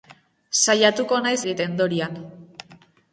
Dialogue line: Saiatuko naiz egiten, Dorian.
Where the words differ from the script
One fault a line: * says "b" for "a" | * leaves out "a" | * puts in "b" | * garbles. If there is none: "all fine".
all fine